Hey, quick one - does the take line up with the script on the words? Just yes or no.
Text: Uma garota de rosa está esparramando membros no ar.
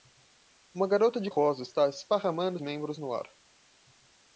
yes